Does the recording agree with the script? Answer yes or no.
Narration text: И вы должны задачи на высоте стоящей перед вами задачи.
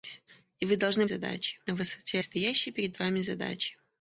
yes